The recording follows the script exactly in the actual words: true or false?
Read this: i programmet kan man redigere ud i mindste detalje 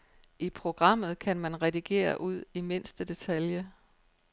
true